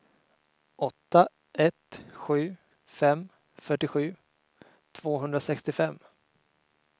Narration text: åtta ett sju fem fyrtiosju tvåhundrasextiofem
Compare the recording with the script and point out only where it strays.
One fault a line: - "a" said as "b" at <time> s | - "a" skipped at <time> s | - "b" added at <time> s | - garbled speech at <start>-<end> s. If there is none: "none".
none